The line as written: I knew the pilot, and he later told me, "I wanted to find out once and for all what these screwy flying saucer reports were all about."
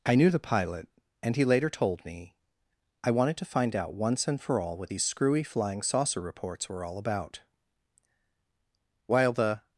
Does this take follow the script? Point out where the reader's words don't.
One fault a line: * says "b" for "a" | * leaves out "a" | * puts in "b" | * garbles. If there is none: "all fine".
* puts in "While the"